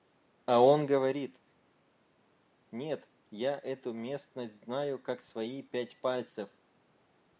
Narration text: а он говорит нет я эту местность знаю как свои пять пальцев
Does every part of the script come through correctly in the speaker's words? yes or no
yes